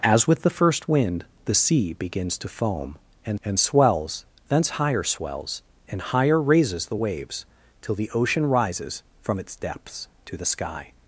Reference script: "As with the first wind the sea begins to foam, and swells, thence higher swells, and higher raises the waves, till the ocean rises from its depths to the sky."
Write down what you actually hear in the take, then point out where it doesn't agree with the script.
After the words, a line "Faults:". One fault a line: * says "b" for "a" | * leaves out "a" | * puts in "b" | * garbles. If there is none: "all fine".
"As with the first wind the sea begins to foam, and and swells, thence higher swells, and higher raises the waves, till the ocean rises from its depths to the sky."
Faults:
* puts in "and"